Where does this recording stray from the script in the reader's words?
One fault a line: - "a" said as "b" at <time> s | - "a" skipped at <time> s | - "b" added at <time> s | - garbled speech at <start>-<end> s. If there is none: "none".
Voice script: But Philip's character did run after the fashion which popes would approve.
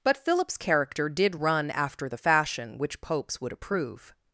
none